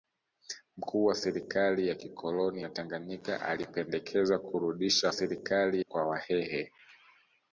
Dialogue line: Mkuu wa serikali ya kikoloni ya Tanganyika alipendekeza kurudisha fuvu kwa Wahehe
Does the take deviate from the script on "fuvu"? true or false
true